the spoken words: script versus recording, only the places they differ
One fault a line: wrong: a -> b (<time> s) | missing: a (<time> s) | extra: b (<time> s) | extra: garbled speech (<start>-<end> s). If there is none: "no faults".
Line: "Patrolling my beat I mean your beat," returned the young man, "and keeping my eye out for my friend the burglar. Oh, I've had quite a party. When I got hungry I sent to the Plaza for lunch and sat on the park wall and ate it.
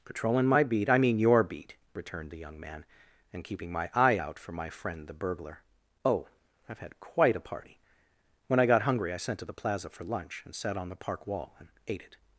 no faults